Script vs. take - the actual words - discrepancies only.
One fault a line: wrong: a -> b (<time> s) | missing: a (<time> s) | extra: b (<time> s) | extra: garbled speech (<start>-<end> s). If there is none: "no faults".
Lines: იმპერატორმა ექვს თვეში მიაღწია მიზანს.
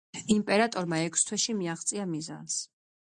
no faults